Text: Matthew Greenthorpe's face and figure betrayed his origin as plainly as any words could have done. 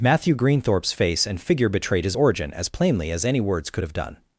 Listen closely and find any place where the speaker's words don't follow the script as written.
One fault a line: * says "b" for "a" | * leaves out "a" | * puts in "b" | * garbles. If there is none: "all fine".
all fine